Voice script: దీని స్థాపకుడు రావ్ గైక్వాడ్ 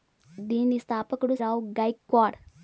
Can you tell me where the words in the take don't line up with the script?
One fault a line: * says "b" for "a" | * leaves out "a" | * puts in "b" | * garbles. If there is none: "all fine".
all fine